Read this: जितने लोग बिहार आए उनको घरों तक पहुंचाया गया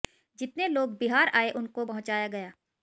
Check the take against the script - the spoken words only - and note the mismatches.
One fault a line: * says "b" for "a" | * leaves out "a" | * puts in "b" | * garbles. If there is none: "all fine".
* leaves out "घरों तक"